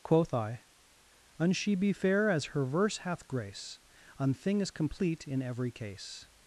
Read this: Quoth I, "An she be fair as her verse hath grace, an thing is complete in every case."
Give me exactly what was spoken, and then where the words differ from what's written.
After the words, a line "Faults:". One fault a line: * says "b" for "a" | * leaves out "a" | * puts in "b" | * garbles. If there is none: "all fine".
Quoth I, "An she be fair as her verse hath grace, an thing is complete in every case."
Faults:
all fine